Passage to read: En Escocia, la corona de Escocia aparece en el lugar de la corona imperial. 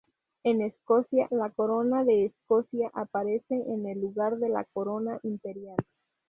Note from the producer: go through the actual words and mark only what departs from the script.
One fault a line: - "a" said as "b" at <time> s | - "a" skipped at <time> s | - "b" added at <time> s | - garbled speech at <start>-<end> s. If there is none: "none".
none